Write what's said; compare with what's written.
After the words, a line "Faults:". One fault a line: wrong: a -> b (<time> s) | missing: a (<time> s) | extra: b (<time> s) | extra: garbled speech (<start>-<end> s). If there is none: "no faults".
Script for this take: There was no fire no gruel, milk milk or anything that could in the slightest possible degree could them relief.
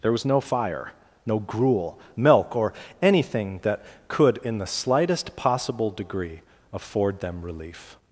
There was no fire no gruel, milk or anything that could in the slightest possible degree afford them relief.
Faults:
missing: milk (2.6 s)
wrong: could -> afford (6.7 s)